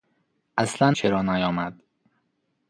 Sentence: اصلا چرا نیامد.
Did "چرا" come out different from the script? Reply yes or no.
no